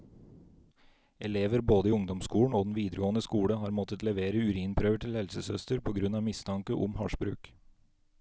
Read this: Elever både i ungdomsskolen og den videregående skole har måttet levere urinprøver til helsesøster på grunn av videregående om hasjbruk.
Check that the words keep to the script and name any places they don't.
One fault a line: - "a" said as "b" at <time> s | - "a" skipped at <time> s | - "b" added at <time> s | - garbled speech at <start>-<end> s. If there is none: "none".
- "videregående" said as "mistanke" at 6.2 s